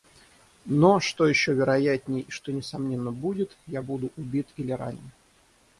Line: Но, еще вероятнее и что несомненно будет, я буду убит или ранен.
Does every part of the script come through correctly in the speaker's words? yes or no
no